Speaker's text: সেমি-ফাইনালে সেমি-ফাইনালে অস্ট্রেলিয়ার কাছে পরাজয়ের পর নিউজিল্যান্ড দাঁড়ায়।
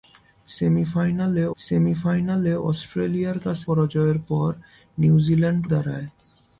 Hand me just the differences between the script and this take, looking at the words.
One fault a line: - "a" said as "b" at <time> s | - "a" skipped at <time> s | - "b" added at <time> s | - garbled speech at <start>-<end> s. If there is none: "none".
none